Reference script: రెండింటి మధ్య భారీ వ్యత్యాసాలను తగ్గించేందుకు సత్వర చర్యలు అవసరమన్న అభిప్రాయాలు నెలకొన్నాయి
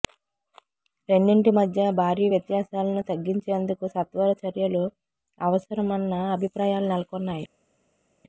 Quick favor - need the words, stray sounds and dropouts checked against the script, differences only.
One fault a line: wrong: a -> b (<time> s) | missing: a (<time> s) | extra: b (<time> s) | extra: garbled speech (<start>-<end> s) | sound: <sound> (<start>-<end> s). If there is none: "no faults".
no faults